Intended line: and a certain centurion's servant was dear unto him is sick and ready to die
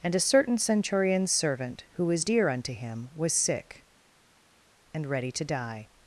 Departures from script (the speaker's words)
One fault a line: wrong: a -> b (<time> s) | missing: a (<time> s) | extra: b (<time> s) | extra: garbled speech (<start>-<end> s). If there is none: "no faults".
extra: who (1.9 s)
wrong: is -> was (3.1 s)